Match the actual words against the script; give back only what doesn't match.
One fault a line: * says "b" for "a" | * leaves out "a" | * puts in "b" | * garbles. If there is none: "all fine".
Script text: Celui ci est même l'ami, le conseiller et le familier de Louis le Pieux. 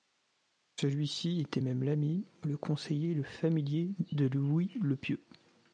* says "était" for "est"